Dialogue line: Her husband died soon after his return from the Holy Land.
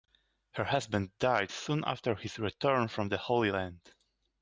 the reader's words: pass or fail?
pass